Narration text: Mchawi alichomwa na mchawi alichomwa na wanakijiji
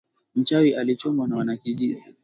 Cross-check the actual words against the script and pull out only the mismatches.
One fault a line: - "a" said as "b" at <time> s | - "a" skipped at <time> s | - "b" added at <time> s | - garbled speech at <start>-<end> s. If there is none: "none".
- "mchawi alichomwa na" skipped at 1.4 s